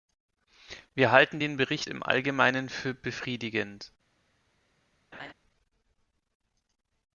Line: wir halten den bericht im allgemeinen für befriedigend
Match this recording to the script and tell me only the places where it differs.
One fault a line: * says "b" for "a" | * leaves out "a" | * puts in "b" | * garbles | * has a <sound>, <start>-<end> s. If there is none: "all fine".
* has a laugh, 5.1-5.3 s